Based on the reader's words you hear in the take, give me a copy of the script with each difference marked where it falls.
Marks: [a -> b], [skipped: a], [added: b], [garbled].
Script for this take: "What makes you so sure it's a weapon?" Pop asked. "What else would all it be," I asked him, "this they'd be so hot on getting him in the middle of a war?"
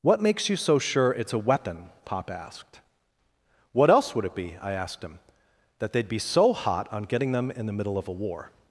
"What makes you so sure it's a weapon?" Pop asked. "What else would [skipped: all] it be," I asked him, ["this -> that] they'd be so hot on getting [him -> them] in the middle of a war?"